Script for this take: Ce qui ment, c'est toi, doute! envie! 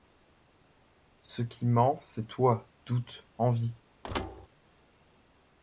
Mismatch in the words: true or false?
false